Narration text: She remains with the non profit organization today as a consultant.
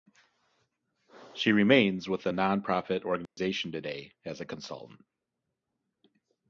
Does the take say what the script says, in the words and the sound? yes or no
no